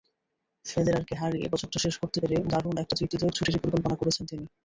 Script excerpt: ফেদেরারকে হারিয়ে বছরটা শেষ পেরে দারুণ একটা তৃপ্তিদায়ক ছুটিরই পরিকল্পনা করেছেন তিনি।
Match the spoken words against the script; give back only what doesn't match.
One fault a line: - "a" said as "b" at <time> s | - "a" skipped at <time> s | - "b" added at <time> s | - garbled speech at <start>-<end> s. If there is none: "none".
- "করতে" added at 2.0 s